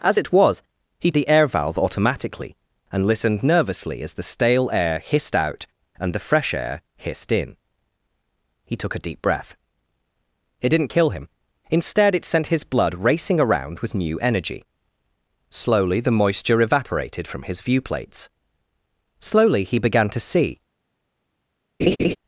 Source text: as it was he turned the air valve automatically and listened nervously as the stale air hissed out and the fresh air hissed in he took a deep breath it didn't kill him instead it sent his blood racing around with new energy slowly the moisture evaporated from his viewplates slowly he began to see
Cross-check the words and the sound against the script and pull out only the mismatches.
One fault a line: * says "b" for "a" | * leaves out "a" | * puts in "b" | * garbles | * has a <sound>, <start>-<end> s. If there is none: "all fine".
* leaves out "turned"
* has a laugh, 21.8-22.2 s